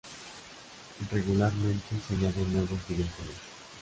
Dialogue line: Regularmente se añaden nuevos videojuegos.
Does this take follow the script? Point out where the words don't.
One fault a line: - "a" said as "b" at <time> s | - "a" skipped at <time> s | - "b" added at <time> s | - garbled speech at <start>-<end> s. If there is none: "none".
none